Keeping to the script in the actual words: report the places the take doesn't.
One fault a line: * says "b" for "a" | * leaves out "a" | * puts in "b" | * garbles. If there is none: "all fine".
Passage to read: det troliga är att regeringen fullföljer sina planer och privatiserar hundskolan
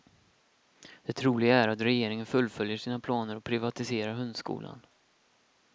all fine